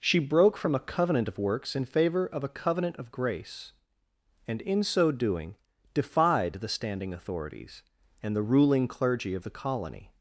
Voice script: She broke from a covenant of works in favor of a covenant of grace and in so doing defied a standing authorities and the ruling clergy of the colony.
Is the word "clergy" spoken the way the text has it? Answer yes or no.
yes